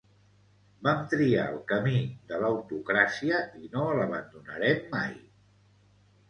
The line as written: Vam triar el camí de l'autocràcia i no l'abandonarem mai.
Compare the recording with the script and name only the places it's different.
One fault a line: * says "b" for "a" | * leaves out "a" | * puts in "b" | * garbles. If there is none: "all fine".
all fine